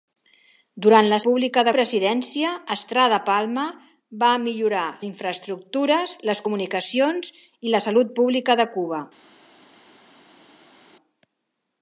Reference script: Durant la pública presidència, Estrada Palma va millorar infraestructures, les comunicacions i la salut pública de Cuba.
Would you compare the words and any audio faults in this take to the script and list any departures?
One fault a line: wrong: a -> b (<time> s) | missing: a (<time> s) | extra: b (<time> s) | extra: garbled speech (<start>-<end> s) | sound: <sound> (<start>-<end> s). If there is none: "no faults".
no faults